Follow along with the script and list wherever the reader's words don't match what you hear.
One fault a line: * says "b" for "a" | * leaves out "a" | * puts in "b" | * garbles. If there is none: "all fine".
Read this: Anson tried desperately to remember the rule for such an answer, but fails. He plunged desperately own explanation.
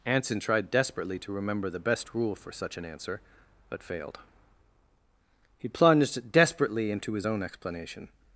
* puts in "best"
* says "failed" for "fails"
* puts in "into his"